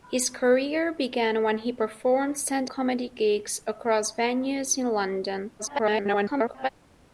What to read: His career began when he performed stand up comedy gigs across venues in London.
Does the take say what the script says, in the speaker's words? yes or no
no